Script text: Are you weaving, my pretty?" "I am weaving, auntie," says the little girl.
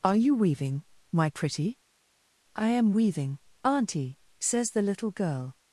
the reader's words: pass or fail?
pass